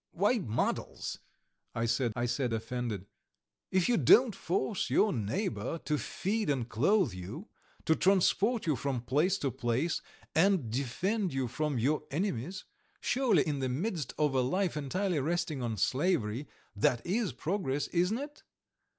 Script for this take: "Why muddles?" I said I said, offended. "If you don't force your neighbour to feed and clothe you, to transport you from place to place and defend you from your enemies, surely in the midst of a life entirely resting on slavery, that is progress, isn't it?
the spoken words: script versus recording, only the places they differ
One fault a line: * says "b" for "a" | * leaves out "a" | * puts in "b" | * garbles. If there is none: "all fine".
all fine